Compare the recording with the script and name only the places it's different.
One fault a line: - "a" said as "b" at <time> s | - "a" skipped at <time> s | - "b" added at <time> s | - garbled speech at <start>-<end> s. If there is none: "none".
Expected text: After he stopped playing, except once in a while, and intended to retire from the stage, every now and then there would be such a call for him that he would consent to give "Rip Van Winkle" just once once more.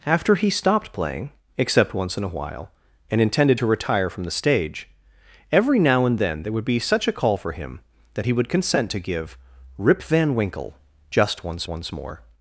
none